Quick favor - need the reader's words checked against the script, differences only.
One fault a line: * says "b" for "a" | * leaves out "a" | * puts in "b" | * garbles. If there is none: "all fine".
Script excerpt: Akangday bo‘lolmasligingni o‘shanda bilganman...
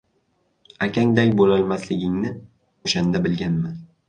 all fine